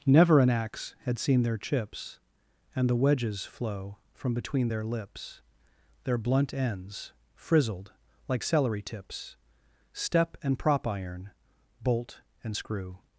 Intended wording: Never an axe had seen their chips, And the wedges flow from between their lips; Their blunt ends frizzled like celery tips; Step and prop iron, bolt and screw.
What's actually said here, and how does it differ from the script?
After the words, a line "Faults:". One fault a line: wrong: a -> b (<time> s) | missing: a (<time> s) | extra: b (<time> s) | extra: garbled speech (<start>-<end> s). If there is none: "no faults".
Never an axe had seen their chips, And the wedges flow from between their lips; Their blunt ends frizzled like celery tips; Step and prop iron, bolt and screw.
Faults:
no faults